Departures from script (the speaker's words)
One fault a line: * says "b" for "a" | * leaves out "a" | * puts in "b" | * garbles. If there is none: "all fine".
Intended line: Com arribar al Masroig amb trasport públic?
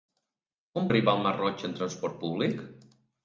all fine